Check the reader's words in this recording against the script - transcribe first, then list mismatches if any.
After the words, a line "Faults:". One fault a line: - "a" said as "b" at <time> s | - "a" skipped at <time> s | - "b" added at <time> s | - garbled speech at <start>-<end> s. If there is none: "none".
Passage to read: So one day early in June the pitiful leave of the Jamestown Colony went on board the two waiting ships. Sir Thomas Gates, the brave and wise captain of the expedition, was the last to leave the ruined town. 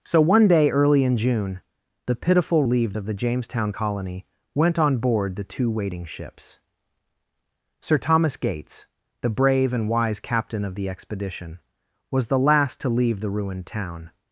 So one day early in June the pitiful leave of the Jamestown Colony went on board the two waiting ships. Sir Thomas Gates, the brave and wise captain of the expedition, was the last to leave the ruined town.
Faults:
none